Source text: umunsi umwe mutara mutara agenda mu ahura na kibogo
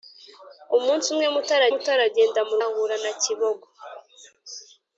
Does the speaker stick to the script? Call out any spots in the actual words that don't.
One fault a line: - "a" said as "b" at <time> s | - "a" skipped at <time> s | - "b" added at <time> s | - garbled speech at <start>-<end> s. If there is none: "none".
none